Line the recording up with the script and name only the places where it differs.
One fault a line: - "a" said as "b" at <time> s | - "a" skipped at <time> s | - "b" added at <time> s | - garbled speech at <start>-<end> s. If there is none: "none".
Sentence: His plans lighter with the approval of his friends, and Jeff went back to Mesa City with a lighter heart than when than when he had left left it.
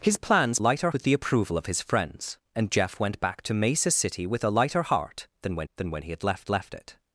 none